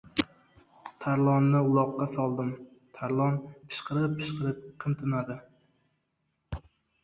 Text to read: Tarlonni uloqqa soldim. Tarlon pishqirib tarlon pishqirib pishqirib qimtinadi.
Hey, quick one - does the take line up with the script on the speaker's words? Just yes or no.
no